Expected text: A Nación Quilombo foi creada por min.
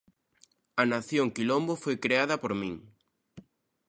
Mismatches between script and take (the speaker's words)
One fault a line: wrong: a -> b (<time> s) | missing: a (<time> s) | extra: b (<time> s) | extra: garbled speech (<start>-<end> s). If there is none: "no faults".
no faults